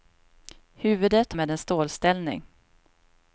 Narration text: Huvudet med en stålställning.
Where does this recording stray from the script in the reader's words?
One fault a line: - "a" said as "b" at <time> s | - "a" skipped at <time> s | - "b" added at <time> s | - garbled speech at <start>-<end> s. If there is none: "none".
none